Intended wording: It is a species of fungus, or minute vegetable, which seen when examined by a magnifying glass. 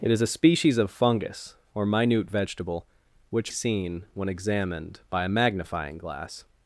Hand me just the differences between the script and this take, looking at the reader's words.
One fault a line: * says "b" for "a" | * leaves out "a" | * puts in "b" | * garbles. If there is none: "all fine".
all fine